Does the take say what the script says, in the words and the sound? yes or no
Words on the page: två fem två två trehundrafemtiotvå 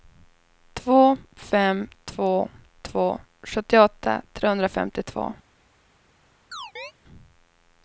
no